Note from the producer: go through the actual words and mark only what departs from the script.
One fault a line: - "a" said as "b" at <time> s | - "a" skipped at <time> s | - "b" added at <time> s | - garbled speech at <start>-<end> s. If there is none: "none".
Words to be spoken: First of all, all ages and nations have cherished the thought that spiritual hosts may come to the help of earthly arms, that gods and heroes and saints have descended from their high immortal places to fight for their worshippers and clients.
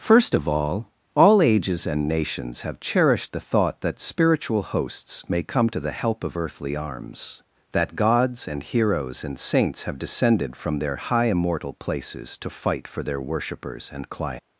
none